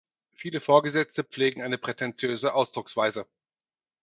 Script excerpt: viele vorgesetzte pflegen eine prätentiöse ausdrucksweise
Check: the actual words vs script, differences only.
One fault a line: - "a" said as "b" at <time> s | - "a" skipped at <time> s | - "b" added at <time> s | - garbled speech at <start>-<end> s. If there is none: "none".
none